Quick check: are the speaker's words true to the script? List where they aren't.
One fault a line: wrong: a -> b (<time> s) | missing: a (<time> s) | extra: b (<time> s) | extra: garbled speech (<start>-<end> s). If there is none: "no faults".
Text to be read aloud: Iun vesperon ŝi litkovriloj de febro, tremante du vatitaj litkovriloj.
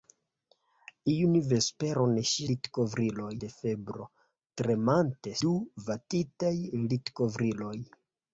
no faults